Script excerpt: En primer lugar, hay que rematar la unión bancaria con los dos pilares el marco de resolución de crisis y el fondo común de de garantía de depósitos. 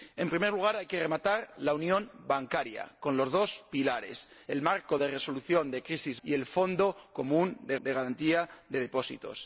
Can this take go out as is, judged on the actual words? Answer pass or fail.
pass